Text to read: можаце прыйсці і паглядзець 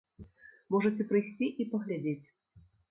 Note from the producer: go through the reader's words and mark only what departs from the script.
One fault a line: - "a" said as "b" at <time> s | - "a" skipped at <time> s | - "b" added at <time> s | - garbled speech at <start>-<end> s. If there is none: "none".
none